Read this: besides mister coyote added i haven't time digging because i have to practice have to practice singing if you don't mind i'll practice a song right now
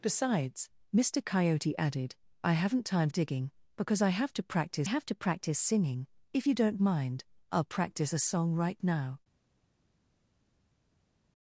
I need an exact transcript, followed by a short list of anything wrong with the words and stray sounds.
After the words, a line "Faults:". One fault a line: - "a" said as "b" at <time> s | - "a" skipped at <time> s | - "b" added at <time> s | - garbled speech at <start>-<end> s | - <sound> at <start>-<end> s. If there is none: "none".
besides mister coyote added i haven't time digging because i have to practice have to practice singing if you don't mind i'll practice a song right now
Faults:
none